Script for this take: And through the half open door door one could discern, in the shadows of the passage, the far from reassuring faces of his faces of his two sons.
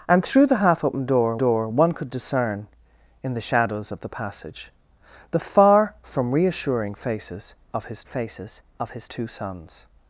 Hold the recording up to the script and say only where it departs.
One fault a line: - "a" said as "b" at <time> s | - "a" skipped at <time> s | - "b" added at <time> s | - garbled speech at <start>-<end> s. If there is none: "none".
none